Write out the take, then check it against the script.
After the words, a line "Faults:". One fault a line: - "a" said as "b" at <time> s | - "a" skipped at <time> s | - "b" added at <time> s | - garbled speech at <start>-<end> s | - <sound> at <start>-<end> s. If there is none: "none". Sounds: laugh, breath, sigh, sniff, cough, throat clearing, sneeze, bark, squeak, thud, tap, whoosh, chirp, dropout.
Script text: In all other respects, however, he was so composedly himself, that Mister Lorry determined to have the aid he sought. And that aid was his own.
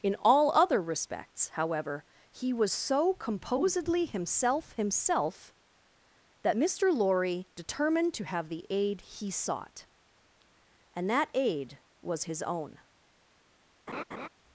In all other respects, however, he was so composedly himself himself, that Mister Lorry determined to have the aid he sought. And that aid was his own.
Faults:
- "himself" added at 4.7 s
- laugh at 13.9-14.3 s